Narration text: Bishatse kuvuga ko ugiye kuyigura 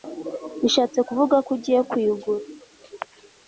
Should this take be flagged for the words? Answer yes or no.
no